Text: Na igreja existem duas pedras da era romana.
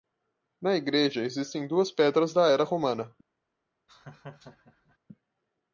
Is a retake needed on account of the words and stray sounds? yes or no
yes